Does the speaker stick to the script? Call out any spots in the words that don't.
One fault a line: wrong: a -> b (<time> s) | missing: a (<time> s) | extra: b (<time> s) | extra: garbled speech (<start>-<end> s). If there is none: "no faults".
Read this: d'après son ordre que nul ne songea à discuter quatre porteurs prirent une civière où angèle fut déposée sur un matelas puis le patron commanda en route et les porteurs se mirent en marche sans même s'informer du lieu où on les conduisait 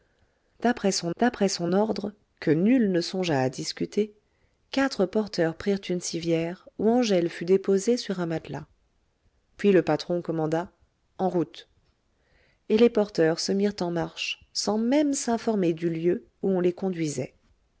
extra: d'après son (1.2 s)